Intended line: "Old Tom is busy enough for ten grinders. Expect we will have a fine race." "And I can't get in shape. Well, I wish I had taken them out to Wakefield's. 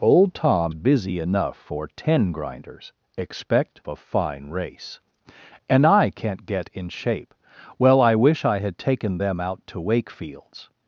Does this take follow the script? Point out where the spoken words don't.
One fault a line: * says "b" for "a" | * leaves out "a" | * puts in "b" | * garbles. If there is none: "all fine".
* leaves out "is"
* leaves out "we will have"